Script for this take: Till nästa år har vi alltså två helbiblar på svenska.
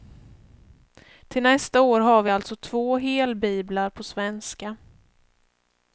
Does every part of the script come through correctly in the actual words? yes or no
yes